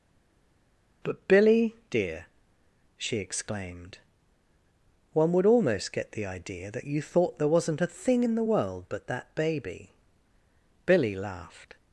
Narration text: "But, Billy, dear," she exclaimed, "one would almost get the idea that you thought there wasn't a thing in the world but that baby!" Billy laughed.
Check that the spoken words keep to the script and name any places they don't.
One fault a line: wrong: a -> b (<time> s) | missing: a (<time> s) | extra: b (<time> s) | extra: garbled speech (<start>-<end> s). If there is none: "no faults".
no faults